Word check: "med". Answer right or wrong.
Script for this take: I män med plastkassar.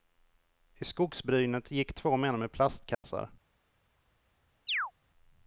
right